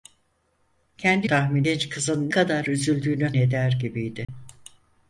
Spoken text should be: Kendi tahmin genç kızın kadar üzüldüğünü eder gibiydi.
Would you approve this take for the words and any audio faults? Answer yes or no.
no